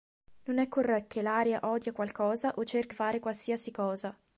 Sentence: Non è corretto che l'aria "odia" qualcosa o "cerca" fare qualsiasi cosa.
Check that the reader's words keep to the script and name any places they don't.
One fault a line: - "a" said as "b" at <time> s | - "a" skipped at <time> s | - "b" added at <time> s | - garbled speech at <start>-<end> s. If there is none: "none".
none